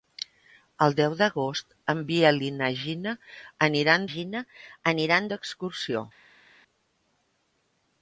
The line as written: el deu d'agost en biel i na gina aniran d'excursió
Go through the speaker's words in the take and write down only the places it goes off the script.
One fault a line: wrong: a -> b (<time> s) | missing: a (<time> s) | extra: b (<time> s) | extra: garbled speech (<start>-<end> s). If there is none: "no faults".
extra: gina aniran (4.1 s)